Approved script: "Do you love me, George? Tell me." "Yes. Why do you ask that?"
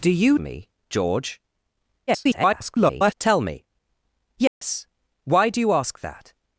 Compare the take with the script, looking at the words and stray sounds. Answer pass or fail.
fail